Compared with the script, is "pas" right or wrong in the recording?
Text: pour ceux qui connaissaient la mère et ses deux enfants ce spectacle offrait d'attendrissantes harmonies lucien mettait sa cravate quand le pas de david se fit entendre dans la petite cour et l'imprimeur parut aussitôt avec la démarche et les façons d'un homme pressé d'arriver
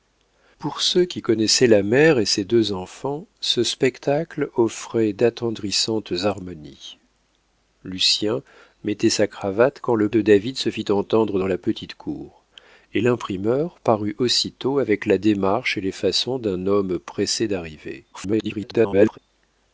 wrong